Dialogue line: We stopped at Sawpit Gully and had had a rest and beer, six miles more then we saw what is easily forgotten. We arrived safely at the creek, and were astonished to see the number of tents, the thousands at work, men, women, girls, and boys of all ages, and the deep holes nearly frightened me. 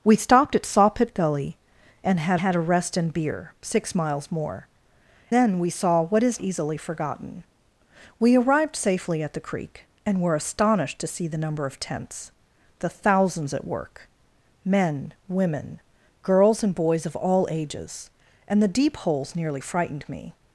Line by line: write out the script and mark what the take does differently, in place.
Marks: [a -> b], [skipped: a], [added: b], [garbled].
We stopped at Sawpit Gully and had had a rest and beer, six miles more then we saw what is easily forgotten. We arrived safely at the creek, and were astonished to see the number of tents, the thousands at work, men, women, girls, and boys of all ages, and the deep holes nearly frightened me.